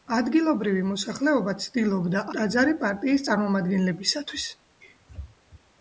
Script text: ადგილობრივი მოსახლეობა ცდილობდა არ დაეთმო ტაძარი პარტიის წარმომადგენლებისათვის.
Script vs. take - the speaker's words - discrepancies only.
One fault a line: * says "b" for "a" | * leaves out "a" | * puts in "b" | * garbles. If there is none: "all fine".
* leaves out "არ დაეთმო"